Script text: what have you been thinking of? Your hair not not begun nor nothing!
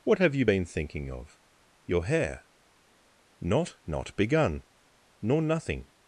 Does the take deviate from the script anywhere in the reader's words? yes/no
no